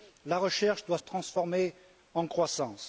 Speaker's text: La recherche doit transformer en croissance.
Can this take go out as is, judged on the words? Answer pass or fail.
pass